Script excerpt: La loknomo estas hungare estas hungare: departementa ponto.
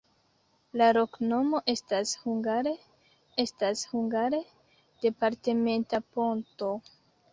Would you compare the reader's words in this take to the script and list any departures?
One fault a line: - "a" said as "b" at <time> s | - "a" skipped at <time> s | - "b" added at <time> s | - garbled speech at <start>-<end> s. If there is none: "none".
none